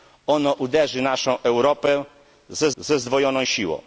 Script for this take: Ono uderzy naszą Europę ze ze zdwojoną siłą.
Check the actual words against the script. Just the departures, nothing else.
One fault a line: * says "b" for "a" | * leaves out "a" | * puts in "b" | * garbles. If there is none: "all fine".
all fine